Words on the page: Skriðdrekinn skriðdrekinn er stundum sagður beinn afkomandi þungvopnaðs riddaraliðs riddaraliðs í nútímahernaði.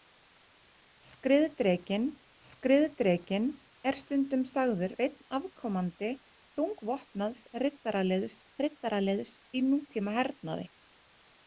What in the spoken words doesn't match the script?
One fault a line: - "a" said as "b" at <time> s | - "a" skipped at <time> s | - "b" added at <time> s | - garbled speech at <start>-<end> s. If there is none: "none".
none